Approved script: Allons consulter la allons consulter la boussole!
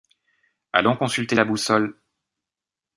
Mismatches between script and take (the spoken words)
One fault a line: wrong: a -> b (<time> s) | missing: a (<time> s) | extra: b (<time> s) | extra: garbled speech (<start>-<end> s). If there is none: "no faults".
missing: allons consulter la (1.5 s)